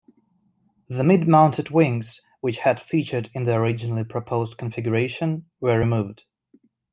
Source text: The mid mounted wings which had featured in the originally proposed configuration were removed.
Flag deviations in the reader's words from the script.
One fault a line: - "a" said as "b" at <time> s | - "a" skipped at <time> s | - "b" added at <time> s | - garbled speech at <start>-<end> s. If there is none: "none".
none